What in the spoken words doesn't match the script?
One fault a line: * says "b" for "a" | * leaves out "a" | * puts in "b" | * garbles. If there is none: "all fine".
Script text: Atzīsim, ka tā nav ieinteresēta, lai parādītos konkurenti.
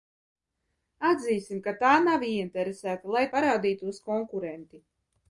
all fine